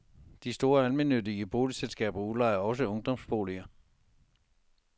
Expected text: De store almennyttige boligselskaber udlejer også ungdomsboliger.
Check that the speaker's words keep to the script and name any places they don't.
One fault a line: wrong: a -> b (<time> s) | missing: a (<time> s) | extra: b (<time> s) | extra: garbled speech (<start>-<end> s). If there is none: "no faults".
no faults